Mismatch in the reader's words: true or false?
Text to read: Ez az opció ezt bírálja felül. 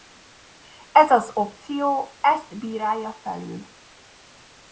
false